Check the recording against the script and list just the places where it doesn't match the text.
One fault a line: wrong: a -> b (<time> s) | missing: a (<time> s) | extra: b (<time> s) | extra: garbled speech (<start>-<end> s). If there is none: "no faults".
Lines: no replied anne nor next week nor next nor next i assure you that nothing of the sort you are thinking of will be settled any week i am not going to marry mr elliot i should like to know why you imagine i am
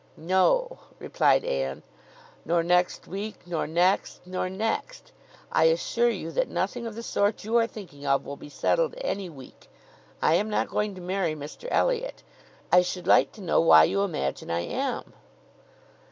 no faults